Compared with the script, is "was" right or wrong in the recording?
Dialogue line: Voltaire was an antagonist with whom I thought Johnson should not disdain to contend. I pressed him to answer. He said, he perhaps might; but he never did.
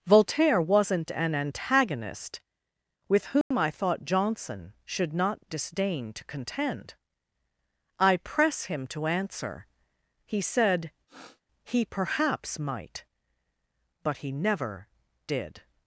wrong